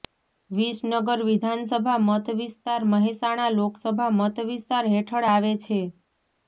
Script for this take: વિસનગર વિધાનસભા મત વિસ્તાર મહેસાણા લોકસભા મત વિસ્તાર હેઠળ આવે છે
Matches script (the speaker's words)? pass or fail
pass